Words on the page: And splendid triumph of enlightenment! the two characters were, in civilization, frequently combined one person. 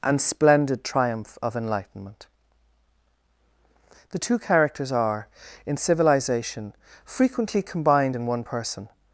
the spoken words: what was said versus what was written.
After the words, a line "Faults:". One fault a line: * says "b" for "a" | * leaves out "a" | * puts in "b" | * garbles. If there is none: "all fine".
And splendid triumph of enlightenment! the two characters are, in civilization, frequently combined in one person.
Faults:
* says "are" for "were"
* puts in "in"